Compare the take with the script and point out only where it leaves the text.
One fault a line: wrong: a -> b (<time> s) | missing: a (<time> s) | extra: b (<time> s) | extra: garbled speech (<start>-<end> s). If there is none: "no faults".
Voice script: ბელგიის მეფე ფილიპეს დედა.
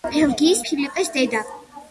missing: მეფე (0.6 s)